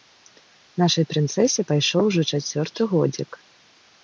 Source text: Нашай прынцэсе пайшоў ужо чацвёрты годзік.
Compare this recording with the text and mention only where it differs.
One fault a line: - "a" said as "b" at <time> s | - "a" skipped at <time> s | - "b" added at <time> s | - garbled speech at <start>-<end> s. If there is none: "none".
none